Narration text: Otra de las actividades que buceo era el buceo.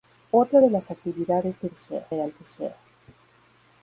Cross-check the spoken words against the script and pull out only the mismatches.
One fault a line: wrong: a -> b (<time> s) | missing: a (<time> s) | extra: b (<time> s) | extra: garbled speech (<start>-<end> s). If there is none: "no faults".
no faults